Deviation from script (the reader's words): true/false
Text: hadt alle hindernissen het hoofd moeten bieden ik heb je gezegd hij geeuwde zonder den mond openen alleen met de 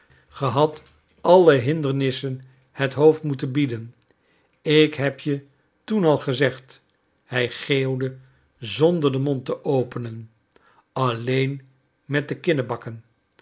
true